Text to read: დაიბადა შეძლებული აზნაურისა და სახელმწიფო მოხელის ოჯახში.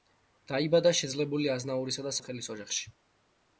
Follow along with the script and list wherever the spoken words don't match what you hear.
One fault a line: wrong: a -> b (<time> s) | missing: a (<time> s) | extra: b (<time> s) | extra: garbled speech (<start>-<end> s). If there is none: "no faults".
missing: სახელმწიფო (2.1 s)